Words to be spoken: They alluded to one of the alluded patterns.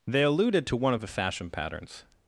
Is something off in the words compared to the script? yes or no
yes